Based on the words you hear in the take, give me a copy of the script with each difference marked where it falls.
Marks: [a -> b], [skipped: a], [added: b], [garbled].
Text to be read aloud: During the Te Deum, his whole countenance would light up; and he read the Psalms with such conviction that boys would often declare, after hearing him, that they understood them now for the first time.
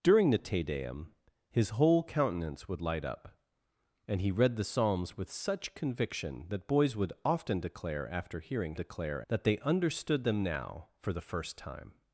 During the Te Deum, his whole countenance would light up; and he read the Psalms with such conviction that boys would often declare, after hearing [him, -> declare] that they understood them now for the first time.